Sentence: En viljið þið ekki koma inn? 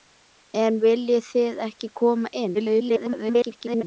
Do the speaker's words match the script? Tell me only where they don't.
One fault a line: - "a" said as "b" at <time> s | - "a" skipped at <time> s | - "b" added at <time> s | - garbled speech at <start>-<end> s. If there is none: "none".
- garbled speech at 2.5-3.8 s